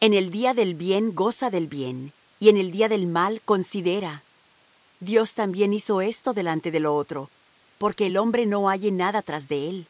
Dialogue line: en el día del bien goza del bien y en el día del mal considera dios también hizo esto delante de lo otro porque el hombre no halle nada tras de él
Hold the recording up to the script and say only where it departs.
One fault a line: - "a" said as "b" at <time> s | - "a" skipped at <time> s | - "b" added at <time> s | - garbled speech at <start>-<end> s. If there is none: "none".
none